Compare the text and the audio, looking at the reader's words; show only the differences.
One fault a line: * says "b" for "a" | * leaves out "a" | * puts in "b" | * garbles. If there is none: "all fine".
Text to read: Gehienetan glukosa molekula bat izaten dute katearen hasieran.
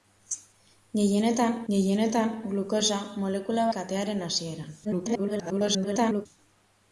* puts in "gehienetan"
* leaves out "bat izaten dute"
* garbles